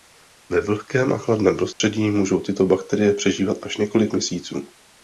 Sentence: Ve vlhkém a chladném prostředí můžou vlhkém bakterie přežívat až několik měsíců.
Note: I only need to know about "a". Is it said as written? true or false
true